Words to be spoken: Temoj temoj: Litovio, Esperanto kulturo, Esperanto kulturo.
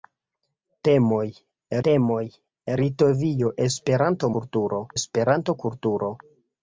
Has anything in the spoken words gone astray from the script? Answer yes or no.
no